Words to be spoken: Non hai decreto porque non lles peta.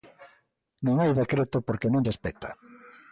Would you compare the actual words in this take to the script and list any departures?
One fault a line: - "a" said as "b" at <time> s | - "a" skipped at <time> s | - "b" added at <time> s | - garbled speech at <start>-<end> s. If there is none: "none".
none